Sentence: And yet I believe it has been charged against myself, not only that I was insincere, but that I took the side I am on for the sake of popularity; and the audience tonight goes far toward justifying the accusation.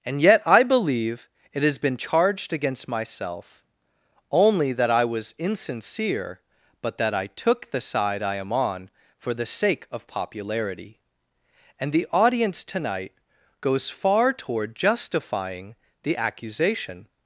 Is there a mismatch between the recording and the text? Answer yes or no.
yes